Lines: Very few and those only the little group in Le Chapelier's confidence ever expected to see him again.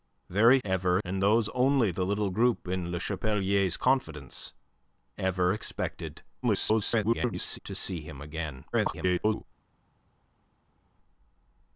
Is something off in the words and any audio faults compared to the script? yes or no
yes